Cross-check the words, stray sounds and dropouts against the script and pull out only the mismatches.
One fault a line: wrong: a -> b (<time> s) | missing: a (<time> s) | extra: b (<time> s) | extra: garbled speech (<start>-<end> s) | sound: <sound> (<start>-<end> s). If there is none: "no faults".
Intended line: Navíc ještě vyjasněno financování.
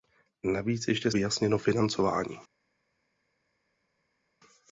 no faults